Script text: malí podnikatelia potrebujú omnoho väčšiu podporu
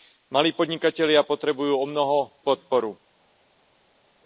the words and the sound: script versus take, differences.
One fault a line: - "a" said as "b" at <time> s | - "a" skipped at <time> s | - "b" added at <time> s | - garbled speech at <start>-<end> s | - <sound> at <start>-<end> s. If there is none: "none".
- "väčšiu" skipped at 2.3 s